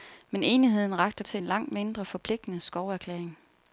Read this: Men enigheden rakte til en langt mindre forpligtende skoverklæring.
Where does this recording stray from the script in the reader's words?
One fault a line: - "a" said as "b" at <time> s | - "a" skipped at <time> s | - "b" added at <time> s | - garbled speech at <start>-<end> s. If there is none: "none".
none